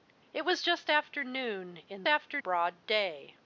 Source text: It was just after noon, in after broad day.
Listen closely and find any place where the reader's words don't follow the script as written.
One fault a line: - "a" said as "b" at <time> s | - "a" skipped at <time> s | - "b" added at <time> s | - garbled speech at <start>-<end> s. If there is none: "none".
none